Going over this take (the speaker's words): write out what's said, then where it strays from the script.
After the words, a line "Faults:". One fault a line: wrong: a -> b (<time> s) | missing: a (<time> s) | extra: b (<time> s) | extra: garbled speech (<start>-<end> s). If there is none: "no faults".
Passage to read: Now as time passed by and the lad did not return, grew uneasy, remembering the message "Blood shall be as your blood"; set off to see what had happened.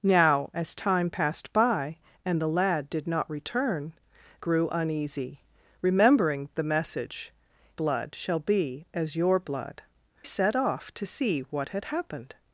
Now as time passed by and the lad did not return, grew uneasy, remembering the message "Blood shall be as your blood"; set off to see what had happened.
Faults:
no faults